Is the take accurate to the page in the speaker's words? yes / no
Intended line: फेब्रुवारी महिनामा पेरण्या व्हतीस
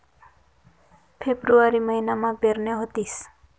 yes